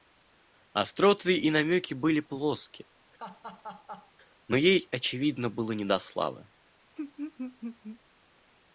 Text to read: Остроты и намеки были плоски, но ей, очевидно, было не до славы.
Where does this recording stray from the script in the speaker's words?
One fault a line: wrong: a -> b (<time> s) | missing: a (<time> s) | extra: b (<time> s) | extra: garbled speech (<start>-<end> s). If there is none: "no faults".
no faults